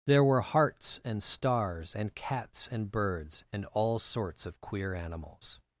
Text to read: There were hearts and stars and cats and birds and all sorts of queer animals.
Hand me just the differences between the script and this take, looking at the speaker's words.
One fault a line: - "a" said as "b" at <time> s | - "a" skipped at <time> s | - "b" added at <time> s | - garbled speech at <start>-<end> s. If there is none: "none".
none